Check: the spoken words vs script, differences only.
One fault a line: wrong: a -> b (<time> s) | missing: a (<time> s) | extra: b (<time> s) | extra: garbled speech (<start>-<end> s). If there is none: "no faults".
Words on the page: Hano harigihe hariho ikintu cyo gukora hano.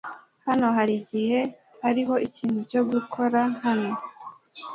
no faults